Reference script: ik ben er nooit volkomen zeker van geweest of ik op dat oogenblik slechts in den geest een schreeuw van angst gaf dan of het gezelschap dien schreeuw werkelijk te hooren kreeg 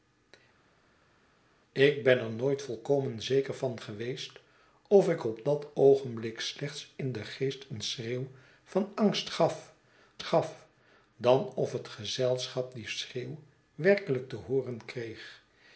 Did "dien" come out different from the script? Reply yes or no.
no